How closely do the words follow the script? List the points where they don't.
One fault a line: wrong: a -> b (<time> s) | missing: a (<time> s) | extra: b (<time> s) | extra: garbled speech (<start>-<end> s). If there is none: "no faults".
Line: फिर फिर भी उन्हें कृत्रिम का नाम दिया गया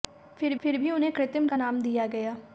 no faults